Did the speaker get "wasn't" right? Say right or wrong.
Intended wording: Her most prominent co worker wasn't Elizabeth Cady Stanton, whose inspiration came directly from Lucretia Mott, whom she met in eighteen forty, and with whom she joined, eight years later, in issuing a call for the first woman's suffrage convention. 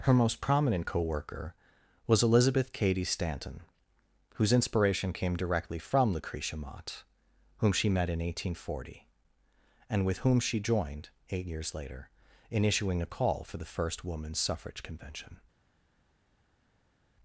wrong